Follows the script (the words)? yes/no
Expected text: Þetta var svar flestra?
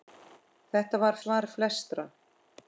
yes